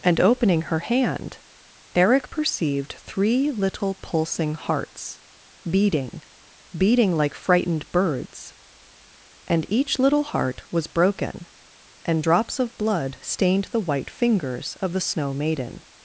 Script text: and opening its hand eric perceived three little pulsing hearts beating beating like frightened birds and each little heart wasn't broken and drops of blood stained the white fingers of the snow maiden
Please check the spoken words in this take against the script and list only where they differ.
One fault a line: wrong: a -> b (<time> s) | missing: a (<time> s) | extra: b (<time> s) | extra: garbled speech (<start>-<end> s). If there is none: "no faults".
wrong: its -> her (0.6 s)
wrong: wasn't -> was (10.7 s)